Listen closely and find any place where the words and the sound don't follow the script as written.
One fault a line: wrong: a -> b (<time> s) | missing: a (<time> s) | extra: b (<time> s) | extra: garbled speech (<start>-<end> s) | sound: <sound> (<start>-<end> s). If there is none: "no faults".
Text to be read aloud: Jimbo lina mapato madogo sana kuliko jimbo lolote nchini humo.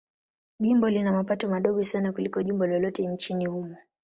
no faults